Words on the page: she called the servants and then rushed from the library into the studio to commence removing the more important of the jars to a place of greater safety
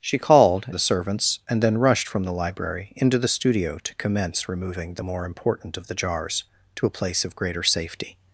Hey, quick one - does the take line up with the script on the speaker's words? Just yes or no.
yes